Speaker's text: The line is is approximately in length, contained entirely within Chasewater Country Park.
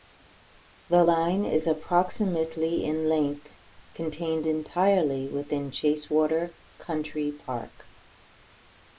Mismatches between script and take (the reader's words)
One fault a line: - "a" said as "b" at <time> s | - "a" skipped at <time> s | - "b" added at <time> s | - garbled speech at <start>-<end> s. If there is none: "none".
- "is" skipped at 1.7 s